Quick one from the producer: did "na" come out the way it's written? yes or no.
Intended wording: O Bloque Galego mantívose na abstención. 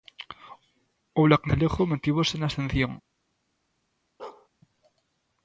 yes